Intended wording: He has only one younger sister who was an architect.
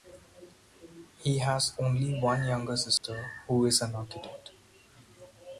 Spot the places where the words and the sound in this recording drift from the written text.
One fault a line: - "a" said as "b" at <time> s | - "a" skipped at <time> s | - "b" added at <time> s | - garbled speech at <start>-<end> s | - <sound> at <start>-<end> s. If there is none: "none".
- dropout at 3.0-3.0 s
- "was" said as "is" at 3.7 s